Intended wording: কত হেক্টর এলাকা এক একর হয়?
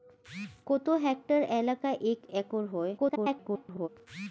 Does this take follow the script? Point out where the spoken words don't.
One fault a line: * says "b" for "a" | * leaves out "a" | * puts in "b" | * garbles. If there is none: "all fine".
* garbles